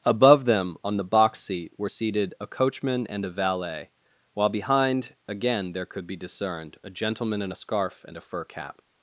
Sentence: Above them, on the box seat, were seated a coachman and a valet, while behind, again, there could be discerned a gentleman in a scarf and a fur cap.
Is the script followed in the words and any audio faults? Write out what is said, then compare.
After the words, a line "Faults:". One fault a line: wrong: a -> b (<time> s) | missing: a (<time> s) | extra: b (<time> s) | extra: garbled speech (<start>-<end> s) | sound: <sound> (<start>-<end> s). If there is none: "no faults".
Above them, on the box seat, were seated a coachman and a valet, while behind, again, there could be discerned a gentleman in a scarf and a fur cap.
Faults:
no faults